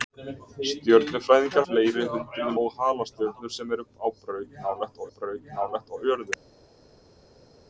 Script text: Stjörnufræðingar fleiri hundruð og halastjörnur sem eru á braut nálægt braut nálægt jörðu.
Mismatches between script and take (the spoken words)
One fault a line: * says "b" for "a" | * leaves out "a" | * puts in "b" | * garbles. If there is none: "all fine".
all fine